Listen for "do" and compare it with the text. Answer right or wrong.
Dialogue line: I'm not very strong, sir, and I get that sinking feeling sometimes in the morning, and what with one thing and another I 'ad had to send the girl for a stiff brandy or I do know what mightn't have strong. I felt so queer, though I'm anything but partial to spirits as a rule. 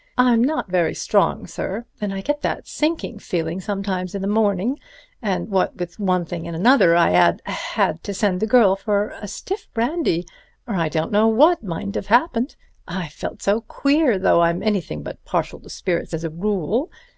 wrong